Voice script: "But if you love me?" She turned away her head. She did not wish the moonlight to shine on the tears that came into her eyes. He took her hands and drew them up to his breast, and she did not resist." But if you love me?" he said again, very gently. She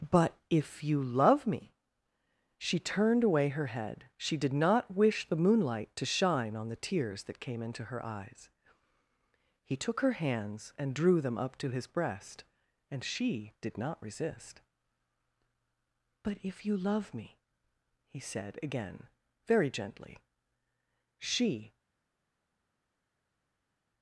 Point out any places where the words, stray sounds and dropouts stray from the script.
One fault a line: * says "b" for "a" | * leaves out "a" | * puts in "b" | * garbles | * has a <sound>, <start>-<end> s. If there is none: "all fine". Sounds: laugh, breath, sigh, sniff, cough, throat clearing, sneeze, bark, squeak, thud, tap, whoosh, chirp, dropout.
all fine